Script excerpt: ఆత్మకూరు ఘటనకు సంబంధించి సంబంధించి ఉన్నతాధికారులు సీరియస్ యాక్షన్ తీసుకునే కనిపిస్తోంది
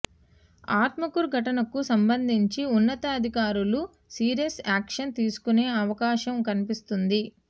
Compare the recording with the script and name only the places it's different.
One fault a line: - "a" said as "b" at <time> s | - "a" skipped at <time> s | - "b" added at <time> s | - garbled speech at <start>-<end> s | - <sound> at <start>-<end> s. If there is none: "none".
- "సంబంధించి" skipped at 2.6 s
- "అవకాశం" added at 5.8 s